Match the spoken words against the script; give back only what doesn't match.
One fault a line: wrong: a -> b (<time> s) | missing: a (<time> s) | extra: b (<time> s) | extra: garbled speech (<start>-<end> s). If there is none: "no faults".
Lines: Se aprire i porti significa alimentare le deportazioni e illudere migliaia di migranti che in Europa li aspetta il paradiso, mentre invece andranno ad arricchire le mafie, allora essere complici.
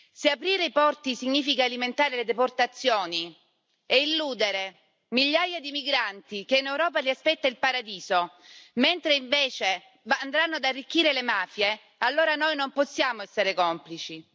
extra: noi non possiamo (12.3 s)